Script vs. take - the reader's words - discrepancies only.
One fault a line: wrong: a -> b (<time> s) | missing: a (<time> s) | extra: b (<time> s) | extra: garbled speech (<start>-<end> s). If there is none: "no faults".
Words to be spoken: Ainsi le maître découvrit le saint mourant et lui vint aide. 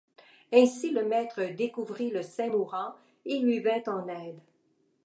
extra: en (3.9 s)